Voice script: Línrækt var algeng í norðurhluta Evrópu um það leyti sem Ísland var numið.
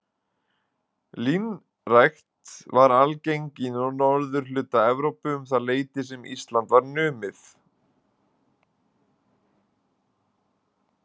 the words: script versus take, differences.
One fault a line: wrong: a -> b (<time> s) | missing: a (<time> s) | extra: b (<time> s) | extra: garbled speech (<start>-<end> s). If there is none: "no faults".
no faults